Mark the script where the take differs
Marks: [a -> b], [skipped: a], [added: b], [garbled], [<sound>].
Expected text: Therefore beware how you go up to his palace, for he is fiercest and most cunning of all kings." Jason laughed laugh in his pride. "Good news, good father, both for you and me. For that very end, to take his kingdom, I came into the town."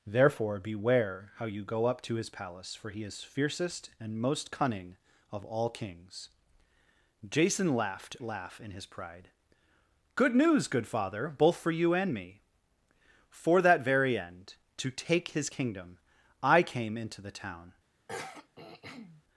Therefore beware how you go up to his palace, for he is fiercest and most cunning of all kings." Jason laughed laugh in his pride. "Good news, good father, both for you and me. For that very end, to take his kingdom, I came into the town." [throat clearing]